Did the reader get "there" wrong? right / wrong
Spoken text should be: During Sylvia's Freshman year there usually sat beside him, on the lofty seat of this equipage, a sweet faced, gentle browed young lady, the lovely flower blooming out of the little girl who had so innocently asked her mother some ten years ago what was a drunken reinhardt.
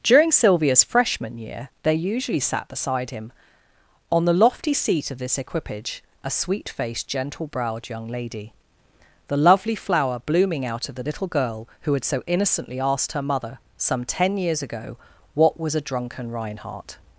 wrong